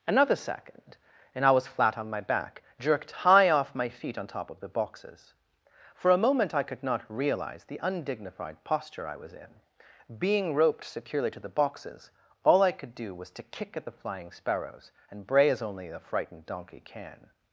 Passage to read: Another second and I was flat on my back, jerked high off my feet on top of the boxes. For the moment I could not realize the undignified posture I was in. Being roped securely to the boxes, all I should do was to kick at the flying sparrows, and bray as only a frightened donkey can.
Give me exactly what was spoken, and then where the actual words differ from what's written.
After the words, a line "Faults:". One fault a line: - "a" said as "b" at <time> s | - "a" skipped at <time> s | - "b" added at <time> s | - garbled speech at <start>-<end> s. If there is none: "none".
Another second and I was flat on my back, jerked high off my feet on top of the boxes. For a moment I could not realize the undignified posture I was in. Being roped securely to the boxes, all I could do was to kick at the flying sparrows, and bray as only a frightened donkey can.
Faults:
- "the" said as "a" at 6.1 s
- "should" said as "could" at 12.7 s